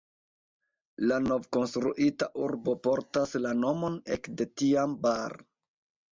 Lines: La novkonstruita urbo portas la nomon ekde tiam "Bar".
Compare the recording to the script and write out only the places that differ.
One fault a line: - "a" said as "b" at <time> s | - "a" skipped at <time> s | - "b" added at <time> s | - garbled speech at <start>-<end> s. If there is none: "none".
none